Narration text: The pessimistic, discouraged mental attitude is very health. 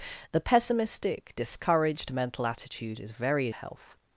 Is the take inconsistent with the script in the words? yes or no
no